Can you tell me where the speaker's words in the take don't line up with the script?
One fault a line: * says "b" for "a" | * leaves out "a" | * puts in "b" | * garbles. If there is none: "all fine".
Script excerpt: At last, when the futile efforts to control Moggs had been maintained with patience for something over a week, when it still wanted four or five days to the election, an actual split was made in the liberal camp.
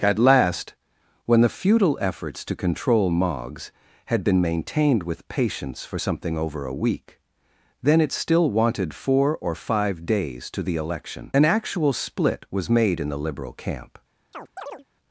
* says "then" for "when"